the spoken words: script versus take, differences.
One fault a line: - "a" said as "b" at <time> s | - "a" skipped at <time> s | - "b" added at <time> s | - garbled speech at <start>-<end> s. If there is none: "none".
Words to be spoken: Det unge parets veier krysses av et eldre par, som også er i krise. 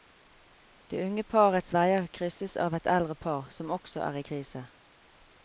none